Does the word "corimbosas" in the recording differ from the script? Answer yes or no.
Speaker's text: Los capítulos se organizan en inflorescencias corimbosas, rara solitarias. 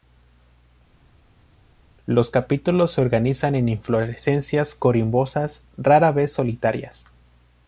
no